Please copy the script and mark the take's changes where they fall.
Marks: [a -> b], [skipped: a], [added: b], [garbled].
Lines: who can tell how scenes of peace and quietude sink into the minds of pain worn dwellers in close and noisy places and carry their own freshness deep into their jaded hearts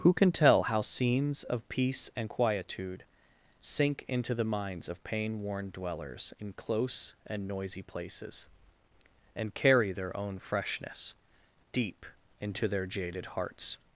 who can tell how scenes of peace and quietude sink into the minds of pain worn dwellers in close and noisy places and carry their own freshness deep into their jaded hearts